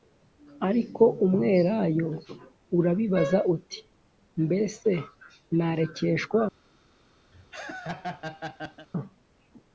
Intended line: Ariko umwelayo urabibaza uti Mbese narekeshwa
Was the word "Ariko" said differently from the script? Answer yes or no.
no